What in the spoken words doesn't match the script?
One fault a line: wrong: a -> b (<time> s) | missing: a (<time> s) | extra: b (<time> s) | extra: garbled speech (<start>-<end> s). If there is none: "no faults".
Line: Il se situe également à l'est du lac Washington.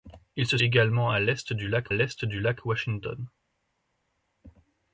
missing: situe (0.6 s)
extra: l'est du lac (1.9 s)